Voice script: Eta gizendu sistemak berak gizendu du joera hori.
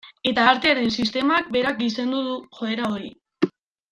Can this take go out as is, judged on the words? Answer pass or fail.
fail